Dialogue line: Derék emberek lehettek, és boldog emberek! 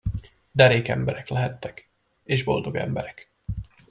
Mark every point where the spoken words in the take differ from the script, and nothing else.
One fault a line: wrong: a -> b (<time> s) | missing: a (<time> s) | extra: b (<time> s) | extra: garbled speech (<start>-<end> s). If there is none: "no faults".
no faults